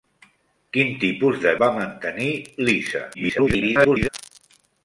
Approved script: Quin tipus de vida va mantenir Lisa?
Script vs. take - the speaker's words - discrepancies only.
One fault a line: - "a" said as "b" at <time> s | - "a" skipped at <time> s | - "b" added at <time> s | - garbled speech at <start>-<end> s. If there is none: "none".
- "vida" skipped at 1.5 s
- garbled speech at 3.1-4.1 s